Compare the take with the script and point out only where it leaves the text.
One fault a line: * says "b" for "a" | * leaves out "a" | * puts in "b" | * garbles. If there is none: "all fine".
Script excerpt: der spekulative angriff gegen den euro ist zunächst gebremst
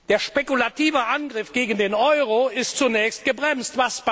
all fine